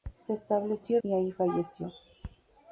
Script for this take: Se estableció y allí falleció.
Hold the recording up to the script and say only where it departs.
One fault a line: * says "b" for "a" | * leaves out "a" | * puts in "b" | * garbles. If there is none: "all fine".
all fine